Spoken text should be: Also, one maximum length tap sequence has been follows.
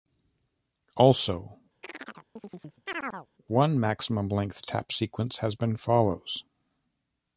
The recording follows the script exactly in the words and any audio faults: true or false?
false